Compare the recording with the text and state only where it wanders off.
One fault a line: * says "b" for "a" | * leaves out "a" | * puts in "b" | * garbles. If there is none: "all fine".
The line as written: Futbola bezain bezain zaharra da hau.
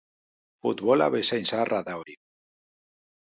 * leaves out "bezain"
* says "hori" for "hau"